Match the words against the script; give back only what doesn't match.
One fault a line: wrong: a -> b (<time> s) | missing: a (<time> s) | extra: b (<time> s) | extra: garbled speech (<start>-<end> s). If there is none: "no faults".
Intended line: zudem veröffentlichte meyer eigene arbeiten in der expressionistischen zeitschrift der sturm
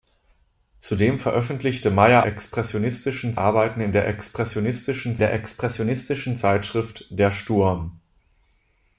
wrong: eigene -> expressionistischen (2.2 s)
extra: der expressionistischen (5.2 s)